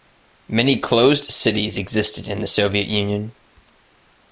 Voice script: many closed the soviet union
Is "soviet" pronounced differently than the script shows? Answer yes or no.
no